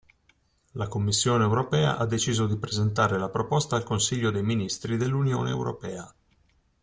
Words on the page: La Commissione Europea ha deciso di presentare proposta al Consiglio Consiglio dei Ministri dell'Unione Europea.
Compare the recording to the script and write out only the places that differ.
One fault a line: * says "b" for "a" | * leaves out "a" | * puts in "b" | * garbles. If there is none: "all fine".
* puts in "la"
* leaves out "Consiglio"